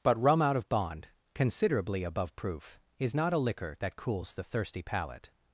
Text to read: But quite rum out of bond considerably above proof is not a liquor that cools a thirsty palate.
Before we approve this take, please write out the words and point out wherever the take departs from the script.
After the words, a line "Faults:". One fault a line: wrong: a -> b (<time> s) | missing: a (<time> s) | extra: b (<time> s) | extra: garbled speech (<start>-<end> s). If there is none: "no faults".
But rum out of bond considerably above proof is not a liquor that cools the thirsty palate.
Faults:
missing: quite (0.2 s)
wrong: a -> the (4.3 s)